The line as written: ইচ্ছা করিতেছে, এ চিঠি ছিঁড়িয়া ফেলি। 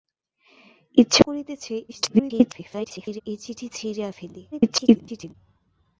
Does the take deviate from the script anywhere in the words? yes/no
yes